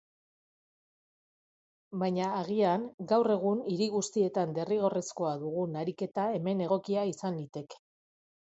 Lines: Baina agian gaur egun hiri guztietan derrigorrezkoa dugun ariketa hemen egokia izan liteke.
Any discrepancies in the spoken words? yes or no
no